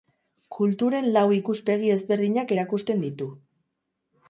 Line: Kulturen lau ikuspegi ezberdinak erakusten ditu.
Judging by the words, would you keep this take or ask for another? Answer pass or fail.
pass